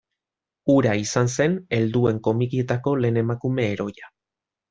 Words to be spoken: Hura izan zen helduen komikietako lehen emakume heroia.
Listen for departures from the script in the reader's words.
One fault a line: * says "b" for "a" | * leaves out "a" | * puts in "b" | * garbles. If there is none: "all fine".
all fine